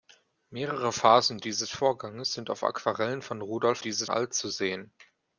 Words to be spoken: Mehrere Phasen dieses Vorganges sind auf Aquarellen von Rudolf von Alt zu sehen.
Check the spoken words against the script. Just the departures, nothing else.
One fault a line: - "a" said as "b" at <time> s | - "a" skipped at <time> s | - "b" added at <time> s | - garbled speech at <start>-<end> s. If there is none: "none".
- "von" said as "dieses" at 3.8 s